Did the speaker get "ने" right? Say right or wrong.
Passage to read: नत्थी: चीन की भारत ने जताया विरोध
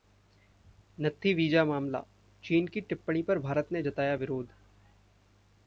right